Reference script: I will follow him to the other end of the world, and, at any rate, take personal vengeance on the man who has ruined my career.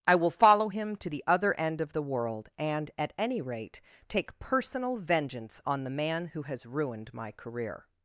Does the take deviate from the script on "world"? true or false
false